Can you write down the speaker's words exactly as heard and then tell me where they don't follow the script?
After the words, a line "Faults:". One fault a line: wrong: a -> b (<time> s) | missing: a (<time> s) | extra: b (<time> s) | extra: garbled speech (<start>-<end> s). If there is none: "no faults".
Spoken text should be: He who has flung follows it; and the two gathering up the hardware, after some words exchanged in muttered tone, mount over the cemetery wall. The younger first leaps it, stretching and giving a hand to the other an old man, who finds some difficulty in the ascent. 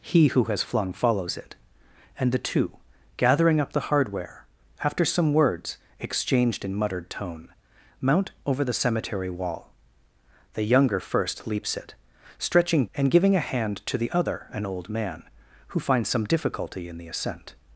He who has flung follows it; and the two gathering up the hardware, after some words exchanged in muttered tone, mount over the cemetery wall. The younger first leaps it, stretching and giving a hand to the other an old man, who finds some difficulty in the ascent.
Faults:
no faults